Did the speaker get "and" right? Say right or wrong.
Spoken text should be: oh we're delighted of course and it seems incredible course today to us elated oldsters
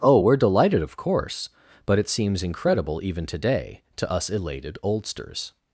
wrong